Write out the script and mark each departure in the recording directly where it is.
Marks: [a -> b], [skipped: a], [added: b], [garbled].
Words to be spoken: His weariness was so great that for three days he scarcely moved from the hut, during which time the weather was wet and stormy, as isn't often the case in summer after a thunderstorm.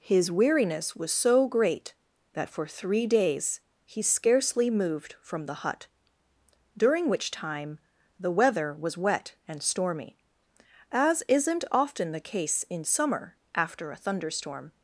His weariness was so great that for three days he scarcely moved from the hut, during which time the weather was wet and stormy, as isn't often the case in summer after a thunderstorm.